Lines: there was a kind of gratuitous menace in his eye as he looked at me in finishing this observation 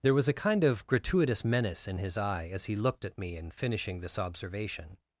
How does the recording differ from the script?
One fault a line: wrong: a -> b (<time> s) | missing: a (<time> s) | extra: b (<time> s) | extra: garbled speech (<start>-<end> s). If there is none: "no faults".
no faults